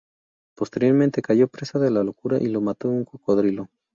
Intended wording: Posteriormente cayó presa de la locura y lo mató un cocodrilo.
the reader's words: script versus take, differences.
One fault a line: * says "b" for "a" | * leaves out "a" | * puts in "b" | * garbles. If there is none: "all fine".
all fine